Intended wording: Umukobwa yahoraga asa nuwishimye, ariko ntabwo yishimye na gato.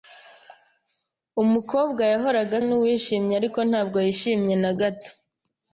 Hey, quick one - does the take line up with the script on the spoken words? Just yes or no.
no